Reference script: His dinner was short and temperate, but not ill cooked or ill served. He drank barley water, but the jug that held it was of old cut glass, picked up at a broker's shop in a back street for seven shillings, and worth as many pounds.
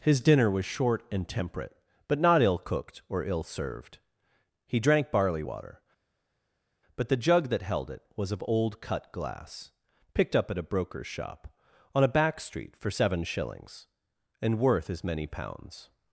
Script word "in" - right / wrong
wrong